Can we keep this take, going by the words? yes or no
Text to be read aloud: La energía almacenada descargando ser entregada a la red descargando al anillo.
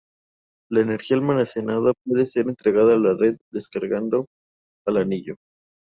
no